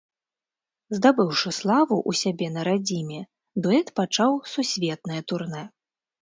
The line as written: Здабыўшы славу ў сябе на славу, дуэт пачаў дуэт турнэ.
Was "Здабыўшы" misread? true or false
false